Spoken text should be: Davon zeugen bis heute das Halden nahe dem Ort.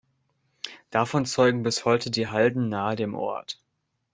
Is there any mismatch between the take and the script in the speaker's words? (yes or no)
yes